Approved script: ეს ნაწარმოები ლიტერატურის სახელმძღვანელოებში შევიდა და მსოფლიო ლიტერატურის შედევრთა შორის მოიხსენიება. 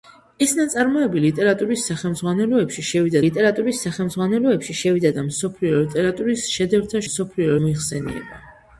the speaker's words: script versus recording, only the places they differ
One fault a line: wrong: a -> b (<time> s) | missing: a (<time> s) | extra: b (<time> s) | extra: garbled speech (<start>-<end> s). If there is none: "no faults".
extra: ლიტერატურის სახელმძღვანელოებში შევიდა (3.2 s)
wrong: შორის -> მსოფლიო (7.1 s)